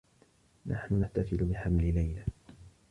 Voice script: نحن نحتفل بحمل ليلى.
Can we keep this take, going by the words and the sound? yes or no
yes